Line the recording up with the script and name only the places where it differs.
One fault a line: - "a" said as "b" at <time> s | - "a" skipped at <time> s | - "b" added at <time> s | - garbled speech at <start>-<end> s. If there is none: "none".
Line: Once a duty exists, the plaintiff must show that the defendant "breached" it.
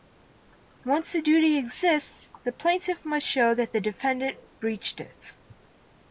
none